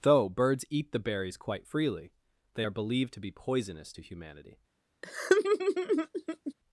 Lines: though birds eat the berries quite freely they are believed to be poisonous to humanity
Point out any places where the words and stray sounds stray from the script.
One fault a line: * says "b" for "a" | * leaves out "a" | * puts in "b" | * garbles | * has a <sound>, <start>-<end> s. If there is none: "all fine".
* has a laugh, 5.0-6.5 s